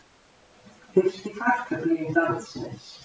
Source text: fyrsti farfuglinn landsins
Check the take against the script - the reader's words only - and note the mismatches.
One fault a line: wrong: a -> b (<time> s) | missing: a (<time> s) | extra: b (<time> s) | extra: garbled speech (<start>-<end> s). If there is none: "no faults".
no faults